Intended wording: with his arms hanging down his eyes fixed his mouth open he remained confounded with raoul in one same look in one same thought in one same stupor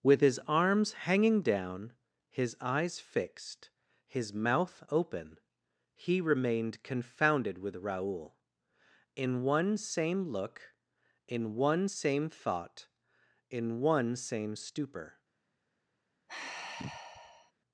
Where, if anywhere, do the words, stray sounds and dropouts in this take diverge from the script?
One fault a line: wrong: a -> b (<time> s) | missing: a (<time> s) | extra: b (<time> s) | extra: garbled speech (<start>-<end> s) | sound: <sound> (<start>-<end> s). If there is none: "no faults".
sound: sigh (16.3-17.5 s)